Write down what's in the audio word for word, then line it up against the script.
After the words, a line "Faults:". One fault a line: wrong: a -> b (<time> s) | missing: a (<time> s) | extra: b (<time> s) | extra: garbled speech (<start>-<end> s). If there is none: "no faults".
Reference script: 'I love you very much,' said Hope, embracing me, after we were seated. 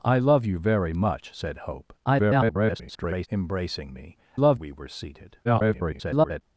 'I love you very much,' said Hope, [garbled] embracing me, love we were seated. [garbled]
Faults:
extra: garbled speech (2.0-3.3 s)
wrong: after -> love (4.3 s)
extra: garbled speech (5.4-6.4 s)